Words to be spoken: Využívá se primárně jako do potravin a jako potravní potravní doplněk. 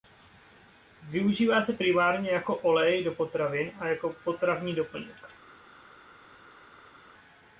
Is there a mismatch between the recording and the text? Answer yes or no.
yes